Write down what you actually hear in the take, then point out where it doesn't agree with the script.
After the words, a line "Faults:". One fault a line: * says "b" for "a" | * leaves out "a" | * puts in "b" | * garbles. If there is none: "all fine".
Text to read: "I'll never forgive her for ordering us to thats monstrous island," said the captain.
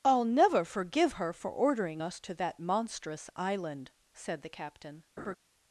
"I'll never forgive her for ordering us to that monstrous island," said the captain.
Faults:
* says "that" for "thats"